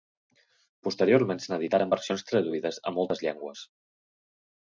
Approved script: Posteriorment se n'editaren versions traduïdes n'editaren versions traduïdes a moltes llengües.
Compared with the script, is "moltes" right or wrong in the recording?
right